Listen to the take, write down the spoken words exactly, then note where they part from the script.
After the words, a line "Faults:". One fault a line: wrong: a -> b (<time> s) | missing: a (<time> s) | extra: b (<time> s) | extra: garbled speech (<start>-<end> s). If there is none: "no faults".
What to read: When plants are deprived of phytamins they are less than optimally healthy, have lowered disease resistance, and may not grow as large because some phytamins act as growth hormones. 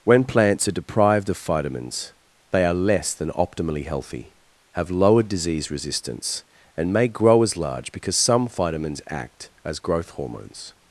When plants are deprived of phytamins they are less than optimally healthy, have lowered disease resistance, and may grow as large because some phytamins act as growth hormones.
Faults:
missing: not (7.1 s)